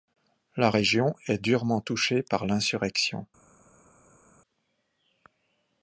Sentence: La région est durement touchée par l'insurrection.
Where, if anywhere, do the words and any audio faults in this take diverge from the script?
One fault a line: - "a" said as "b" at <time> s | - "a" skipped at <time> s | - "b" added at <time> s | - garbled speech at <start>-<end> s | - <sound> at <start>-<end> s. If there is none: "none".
none